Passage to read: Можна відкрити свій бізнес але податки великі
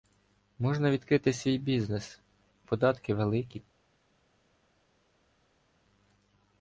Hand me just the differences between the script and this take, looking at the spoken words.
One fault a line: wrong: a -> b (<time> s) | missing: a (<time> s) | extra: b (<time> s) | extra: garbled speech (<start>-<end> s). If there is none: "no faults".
missing: але (2.2 s)